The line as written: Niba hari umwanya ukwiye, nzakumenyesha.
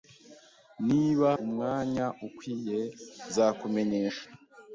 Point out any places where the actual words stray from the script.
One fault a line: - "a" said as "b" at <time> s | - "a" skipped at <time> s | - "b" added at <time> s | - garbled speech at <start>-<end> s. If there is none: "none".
- "hari" skipped at 1.3 s